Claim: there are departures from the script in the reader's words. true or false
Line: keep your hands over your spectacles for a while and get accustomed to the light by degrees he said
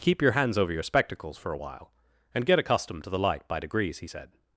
false